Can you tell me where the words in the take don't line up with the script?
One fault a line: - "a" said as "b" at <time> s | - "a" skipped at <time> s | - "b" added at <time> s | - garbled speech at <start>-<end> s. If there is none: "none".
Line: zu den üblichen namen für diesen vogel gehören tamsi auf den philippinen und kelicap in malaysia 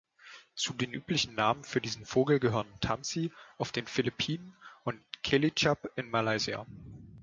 none